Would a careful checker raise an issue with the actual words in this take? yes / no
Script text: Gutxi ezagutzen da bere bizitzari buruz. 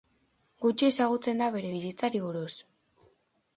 no